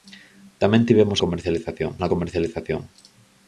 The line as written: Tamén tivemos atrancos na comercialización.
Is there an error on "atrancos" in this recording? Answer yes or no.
yes